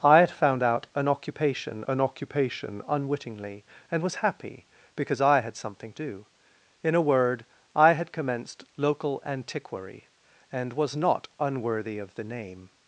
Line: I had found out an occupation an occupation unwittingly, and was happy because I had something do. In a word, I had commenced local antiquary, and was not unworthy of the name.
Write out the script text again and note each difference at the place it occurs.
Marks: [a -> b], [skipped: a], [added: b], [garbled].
I had found out an occupation an occupation unwittingly, and was happy because I had something do. In a word, I had commenced local antiquary, and was not unworthy of the name.